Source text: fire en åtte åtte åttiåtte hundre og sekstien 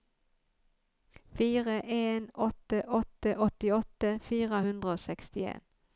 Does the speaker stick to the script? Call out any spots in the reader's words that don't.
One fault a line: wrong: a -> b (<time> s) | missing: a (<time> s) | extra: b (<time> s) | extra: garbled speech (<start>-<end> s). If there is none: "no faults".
extra: fire (4.3 s)